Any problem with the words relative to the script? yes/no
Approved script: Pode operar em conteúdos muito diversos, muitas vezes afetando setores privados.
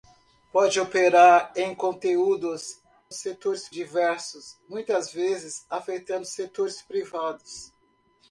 yes